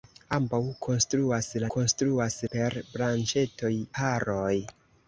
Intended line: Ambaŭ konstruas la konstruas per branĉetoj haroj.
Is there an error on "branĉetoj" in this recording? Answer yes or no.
no